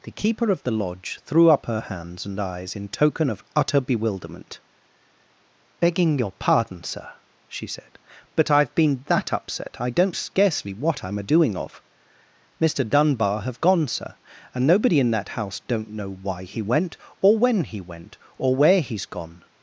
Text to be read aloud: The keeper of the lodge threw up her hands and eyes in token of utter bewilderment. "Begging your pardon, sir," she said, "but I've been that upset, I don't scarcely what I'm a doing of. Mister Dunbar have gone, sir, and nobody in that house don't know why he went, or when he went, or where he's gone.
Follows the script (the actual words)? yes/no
yes